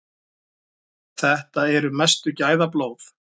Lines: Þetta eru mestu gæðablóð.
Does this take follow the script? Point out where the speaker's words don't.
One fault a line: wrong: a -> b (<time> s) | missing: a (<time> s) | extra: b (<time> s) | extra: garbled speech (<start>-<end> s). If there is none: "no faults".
no faults